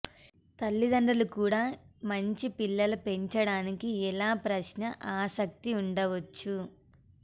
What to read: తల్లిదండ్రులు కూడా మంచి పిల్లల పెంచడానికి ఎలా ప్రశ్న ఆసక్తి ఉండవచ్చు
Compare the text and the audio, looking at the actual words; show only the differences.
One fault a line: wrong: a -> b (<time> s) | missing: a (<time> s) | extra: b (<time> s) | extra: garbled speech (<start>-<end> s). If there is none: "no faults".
no faults